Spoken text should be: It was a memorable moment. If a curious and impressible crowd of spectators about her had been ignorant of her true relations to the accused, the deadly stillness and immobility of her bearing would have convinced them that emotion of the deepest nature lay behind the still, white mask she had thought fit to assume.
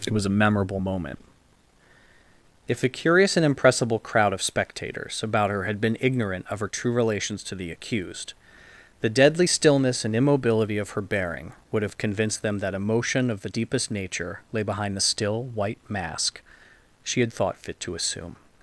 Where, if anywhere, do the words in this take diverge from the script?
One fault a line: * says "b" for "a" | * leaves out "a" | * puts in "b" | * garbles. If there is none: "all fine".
all fine